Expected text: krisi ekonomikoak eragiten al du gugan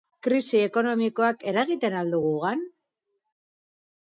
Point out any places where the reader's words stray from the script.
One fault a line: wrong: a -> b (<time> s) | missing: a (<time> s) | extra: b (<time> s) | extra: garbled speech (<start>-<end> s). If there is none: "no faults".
no faults